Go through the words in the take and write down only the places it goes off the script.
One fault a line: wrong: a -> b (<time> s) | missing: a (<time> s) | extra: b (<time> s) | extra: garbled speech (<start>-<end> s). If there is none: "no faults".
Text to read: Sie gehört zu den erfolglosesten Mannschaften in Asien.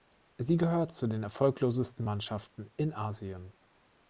no faults